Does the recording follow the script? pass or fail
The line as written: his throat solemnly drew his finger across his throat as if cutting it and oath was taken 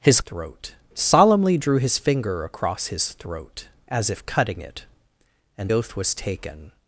pass